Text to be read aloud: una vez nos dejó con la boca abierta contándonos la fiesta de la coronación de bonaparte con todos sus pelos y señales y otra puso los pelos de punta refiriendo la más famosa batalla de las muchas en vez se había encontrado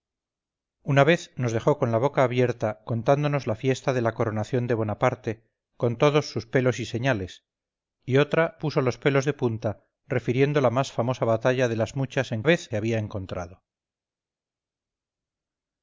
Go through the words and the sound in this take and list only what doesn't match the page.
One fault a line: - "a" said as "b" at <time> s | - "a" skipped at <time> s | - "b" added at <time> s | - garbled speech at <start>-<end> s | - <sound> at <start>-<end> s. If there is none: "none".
none